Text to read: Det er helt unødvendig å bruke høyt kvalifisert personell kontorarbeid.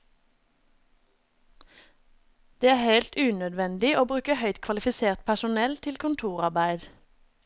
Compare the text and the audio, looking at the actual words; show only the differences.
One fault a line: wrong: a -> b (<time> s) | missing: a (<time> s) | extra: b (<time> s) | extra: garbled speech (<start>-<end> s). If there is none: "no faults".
extra: til (5.8 s)